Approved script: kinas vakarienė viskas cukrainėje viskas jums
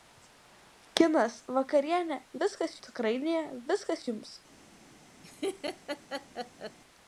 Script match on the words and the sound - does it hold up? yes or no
no